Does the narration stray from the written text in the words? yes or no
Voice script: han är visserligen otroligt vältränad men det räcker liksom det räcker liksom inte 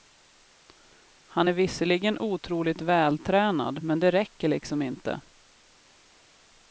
yes